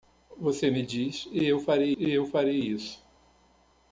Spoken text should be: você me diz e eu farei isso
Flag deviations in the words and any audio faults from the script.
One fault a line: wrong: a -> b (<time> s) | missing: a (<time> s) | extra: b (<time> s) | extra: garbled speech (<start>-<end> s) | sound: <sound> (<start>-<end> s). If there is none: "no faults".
extra: e eu farei (2.0 s)